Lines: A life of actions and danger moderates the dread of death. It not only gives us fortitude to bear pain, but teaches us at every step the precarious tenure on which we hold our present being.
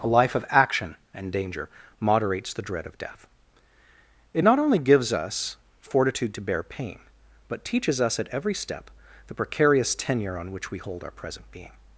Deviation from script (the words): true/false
true